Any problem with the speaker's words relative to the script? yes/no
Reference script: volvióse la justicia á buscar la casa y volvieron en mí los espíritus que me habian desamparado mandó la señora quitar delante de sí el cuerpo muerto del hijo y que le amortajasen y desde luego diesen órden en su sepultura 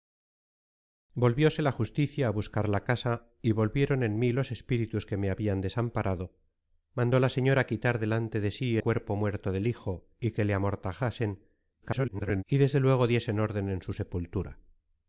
yes